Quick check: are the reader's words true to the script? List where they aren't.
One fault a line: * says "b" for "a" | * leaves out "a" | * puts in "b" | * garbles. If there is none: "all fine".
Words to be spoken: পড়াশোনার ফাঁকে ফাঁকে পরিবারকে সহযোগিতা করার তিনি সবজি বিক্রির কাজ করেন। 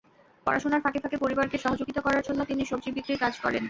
* puts in "জন্য"